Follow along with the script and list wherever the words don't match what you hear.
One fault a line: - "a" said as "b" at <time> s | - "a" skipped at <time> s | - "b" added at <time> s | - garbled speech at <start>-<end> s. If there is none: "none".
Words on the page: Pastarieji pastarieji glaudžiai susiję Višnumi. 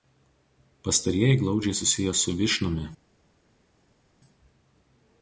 - "pastarieji" skipped at 1.4 s
- "su" added at 2.1 s